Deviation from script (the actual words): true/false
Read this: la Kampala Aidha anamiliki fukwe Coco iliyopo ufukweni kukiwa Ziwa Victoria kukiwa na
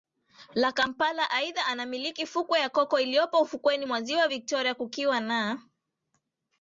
true